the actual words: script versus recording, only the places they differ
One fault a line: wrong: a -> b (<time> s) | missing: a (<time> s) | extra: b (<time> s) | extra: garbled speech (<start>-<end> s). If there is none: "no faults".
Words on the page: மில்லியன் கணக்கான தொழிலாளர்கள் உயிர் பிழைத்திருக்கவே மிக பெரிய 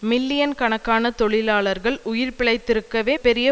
missing: மிக (3.1 s)